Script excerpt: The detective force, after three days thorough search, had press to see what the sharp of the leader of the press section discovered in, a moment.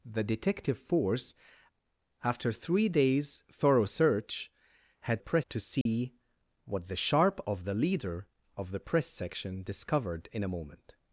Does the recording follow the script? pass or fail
pass